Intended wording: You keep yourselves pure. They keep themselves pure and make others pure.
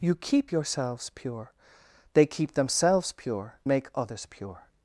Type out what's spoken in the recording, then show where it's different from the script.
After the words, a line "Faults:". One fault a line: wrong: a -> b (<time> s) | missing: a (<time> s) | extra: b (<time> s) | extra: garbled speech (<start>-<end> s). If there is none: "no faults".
You keep yourselves pure. They keep themselves pure make others pure.
Faults:
missing: and (3.6 s)